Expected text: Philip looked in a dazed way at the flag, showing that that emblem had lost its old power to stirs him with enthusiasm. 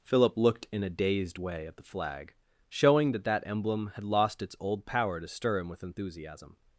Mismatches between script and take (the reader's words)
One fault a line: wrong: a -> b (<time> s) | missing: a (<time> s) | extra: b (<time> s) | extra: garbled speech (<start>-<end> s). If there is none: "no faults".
wrong: stirs -> stir (5.3 s)